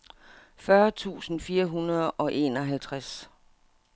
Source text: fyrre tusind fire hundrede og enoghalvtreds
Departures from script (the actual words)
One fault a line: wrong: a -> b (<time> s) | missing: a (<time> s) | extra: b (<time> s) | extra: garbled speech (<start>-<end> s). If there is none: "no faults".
no faults